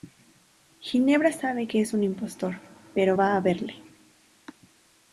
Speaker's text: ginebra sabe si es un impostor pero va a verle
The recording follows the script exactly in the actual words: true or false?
false